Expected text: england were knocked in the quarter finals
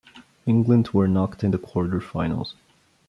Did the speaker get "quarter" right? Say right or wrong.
right